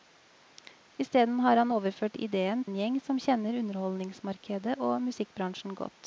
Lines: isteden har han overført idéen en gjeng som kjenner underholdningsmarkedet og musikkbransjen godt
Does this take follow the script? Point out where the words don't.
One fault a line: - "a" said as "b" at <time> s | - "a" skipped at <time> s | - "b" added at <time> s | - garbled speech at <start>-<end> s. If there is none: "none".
none